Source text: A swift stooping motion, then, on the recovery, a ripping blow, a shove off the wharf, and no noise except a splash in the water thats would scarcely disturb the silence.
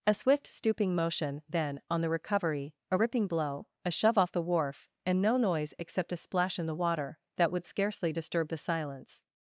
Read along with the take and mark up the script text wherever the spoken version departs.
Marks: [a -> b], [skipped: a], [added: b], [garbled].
A swift stooping motion, then, on the recovery, a ripping blow, a shove off the wharf, and no noise except a splash in the water [thats -> that] would scarcely disturb the silence.